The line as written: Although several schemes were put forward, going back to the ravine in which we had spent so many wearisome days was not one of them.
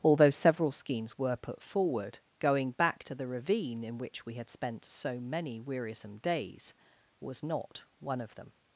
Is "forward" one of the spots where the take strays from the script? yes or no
no